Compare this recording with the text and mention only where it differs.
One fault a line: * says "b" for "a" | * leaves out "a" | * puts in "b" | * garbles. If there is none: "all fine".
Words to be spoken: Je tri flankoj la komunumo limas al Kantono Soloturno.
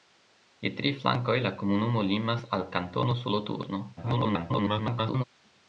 * garbles